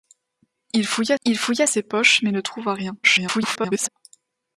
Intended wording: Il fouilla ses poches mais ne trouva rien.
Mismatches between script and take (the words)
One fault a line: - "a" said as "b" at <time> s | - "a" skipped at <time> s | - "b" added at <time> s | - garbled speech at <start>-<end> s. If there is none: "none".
- "il fouilla" added at 1.2 s
- garbled speech at 3.0-3.9 s